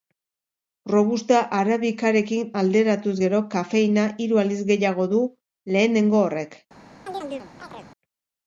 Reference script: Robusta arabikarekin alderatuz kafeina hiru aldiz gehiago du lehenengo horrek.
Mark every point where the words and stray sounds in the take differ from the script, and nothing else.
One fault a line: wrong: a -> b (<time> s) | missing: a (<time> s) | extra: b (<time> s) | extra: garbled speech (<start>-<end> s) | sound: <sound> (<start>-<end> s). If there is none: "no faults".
extra: gero (3.2 s)
sound: chirp (7.1-7.9 s)